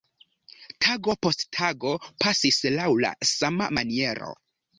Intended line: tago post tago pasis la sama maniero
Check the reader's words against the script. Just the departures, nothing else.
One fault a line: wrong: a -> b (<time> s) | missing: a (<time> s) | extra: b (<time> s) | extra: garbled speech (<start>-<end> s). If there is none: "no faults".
extra: laŭ (2.8 s)